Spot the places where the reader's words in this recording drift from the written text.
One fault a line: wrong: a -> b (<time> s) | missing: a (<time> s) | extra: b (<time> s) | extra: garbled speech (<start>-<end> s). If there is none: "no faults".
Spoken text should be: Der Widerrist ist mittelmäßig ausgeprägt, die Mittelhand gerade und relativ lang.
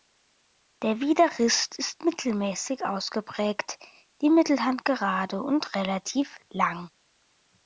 no faults